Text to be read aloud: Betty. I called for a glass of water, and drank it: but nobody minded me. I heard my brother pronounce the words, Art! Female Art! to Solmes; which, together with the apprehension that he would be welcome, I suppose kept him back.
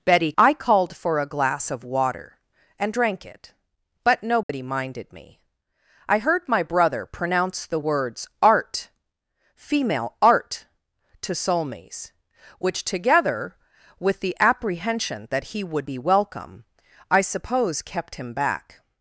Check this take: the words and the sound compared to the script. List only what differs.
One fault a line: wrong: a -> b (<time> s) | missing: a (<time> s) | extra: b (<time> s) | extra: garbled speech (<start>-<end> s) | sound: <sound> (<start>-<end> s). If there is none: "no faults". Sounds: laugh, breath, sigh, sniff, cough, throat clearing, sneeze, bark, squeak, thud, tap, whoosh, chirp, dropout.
sound: dropout (4.4-4.5 s)